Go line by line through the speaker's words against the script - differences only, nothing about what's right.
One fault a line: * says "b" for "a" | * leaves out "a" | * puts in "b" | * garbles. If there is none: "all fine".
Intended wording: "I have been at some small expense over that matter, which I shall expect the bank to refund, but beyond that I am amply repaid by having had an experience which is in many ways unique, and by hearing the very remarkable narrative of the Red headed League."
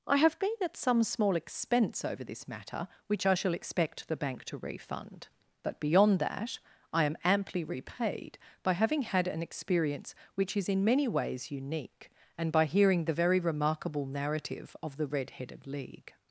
* says "this" for "that"